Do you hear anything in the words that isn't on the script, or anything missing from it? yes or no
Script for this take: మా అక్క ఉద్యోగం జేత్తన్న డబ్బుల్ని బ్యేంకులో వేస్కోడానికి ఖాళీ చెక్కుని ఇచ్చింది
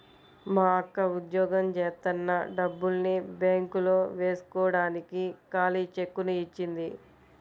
no